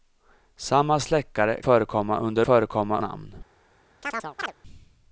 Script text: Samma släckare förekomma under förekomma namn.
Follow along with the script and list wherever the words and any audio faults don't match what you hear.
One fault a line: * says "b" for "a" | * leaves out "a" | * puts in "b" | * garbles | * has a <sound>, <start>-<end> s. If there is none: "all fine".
* has a chirp, 4.0-4.5 s